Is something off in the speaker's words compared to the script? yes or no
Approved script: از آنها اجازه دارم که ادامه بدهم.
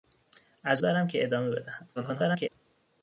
yes